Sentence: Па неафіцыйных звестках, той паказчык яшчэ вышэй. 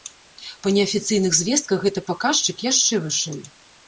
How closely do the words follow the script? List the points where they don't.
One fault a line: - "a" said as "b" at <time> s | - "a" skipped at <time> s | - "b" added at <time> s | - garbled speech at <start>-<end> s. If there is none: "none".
- "той" said as "гэты" at 1.8 s